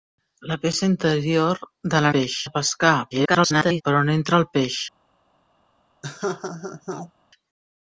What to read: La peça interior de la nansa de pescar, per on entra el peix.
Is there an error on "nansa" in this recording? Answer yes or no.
yes